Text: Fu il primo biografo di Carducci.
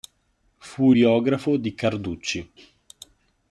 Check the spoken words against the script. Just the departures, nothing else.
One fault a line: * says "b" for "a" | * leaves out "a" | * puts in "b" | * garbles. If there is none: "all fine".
* leaves out "il primo"